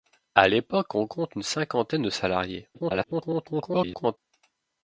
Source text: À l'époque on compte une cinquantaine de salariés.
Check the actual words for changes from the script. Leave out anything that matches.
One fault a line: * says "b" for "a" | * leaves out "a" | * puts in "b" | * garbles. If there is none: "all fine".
* garbles